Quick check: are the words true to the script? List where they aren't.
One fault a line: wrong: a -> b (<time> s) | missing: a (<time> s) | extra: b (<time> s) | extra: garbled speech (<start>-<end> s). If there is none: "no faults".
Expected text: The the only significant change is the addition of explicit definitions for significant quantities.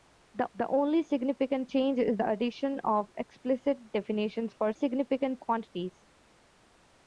no faults